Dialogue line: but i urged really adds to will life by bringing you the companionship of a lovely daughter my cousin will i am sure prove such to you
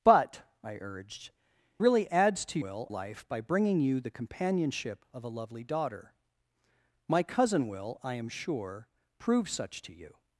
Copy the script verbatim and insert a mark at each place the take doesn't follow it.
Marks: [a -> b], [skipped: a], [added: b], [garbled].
but i urged really adds to will life by bringing you the companionship of a lovely daughter my cousin will i am sure prove such to you